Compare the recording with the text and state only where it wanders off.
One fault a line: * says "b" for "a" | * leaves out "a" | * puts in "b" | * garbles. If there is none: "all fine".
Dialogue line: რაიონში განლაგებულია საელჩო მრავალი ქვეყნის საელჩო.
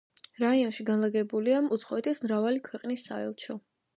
* says "უცხოეთის" for "საელჩო"